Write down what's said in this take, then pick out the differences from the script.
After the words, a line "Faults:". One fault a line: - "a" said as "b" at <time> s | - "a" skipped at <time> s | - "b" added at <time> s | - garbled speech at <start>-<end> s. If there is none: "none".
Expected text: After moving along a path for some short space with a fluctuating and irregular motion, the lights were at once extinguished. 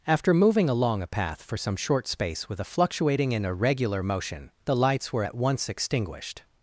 After moving along a path for some short space with a fluctuating and irregular motion, the lights were at once extinguished.
Faults:
none